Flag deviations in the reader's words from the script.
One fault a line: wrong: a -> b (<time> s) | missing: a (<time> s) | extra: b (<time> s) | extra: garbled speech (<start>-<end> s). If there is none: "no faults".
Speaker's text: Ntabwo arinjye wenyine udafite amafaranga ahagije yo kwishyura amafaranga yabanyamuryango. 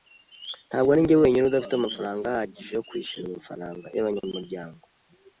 no faults